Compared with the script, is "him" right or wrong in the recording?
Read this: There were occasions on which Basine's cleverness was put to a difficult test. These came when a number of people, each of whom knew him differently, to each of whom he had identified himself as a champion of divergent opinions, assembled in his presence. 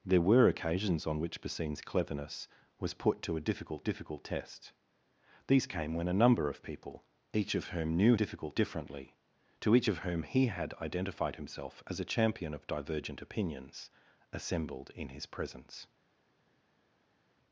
wrong